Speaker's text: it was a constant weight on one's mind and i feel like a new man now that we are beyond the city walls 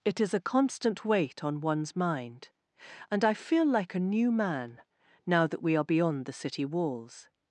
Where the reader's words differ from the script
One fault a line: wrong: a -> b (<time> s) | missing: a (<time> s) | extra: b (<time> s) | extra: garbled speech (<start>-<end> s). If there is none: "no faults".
wrong: was -> is (0.2 s)